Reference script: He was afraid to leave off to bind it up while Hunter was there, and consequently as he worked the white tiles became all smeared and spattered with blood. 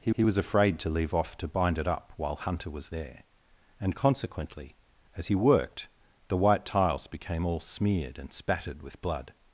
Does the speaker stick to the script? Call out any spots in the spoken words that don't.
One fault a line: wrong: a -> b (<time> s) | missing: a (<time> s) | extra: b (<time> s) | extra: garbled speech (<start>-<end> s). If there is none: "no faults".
extra: he (0.1 s)